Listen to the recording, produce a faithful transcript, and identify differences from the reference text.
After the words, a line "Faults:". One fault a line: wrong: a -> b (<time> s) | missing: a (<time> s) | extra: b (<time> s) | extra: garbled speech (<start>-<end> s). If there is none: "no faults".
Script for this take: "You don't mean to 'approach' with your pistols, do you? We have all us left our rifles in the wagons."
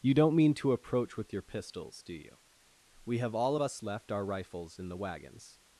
"You don't mean to 'approach' with your pistols, do you? We have all us left our rifles in the wagons."
Faults:
no faults